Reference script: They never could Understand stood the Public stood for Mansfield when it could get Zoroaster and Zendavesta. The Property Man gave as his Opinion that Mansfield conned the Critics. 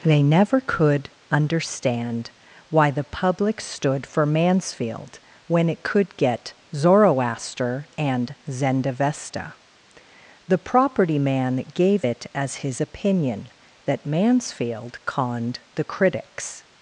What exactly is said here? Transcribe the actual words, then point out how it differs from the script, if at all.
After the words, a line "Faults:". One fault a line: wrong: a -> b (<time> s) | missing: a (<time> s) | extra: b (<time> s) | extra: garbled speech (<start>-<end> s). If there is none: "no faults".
They never could Understand why the Public stood for Mansfield when it could get Zoroaster and Zendavesta. The Property Man gave it as his Opinion that Mansfield conned the Critics.
Faults:
wrong: stood -> why (2.7 s)
extra: it (12.0 s)